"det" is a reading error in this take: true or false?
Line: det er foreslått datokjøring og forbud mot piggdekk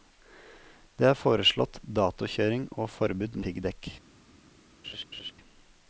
false